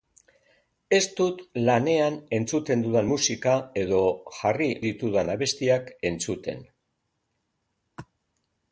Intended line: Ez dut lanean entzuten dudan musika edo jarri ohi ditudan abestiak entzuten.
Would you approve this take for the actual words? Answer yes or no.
no